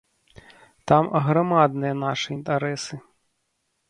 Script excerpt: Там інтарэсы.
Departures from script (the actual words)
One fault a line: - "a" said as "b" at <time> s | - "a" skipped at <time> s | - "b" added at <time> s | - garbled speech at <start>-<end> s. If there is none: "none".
- "аграмадныя нашы" added at 1.2 s